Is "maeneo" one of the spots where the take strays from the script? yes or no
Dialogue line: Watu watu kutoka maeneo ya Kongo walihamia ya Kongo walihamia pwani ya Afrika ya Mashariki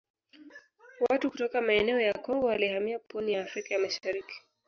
no